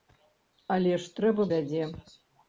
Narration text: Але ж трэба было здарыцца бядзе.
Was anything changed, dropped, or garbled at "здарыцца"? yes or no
yes